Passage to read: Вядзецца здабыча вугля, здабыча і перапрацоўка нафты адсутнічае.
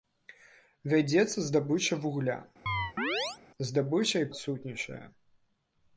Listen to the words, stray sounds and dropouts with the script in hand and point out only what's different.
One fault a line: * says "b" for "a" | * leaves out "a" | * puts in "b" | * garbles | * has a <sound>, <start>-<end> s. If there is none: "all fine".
* has a chirp, 2.7-3.4 s
* leaves out "перапрацоўка нафты"